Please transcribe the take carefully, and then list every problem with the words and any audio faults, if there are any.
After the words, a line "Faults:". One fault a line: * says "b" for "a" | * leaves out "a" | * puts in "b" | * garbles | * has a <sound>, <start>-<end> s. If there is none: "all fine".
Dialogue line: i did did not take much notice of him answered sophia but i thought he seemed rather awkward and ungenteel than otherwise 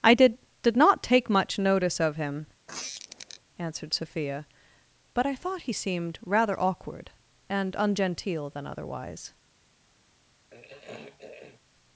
i did did not take much notice of him answered sophia but i thought he seemed rather awkward and ungenteel than otherwise
Faults:
* has a squeak, 2.7-3.4 s
* has a throat clearing, 10.5-11.6 s